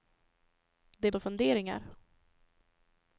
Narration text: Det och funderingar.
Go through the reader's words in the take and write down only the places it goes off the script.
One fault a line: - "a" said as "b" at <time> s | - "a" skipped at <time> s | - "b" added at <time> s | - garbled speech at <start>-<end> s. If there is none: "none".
none